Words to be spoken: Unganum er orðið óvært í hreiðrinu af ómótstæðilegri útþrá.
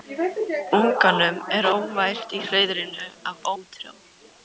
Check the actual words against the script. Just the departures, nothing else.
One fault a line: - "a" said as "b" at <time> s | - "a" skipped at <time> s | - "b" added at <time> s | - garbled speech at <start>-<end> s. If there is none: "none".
- "orðið" skipped at 1.7 s
- "ómótstæðilegri" skipped at 3.5 s